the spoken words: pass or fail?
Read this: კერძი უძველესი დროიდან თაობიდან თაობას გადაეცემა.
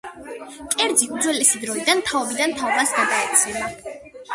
pass